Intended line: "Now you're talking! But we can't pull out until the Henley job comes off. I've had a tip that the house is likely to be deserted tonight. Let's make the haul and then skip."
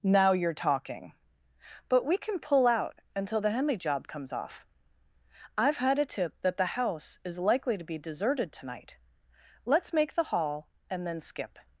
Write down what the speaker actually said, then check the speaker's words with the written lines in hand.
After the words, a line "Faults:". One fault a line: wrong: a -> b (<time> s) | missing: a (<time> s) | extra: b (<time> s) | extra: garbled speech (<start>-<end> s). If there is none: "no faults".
"Now you're talking! But we can pull out until the Henley job comes off. I've had a tip that the house is likely to be deserted tonight. Let's make the haul and then skip."
Faults:
wrong: can't -> can (2.2 s)